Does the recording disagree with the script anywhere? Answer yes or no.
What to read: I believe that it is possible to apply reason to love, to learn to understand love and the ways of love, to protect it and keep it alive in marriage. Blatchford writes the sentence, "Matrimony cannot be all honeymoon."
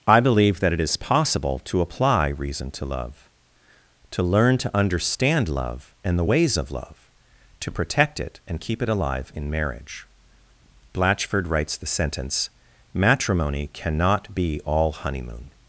no